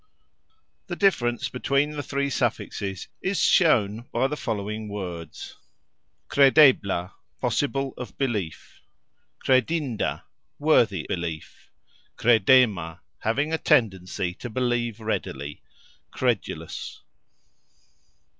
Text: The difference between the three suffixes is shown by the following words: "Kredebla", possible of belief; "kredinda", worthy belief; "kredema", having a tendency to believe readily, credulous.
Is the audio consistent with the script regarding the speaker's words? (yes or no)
yes